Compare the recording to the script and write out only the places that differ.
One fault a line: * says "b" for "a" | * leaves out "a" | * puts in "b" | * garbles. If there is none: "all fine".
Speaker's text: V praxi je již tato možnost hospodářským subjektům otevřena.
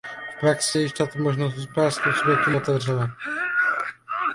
all fine